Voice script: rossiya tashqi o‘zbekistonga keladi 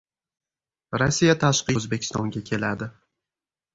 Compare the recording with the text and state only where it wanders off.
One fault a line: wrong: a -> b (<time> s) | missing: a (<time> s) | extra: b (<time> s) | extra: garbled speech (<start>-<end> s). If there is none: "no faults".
no faults